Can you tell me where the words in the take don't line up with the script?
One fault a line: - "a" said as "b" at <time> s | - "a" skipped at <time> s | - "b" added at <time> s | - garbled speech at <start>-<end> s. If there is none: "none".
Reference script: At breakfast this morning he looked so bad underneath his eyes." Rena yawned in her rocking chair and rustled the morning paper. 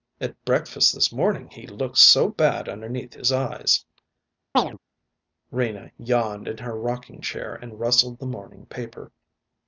none